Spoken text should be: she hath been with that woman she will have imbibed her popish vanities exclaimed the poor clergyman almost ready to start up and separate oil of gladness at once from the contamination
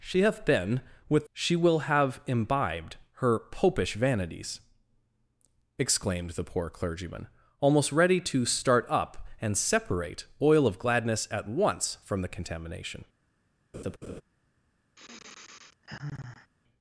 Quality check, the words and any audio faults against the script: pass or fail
fail